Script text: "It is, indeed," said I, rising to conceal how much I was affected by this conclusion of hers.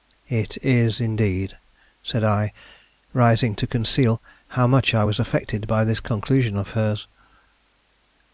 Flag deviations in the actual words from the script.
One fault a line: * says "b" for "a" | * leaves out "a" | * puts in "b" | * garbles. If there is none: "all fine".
all fine